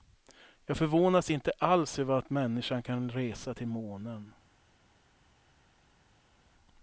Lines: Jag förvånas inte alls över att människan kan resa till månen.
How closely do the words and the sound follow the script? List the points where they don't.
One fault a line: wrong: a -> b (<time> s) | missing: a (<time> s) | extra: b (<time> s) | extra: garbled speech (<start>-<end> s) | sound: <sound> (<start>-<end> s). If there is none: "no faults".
no faults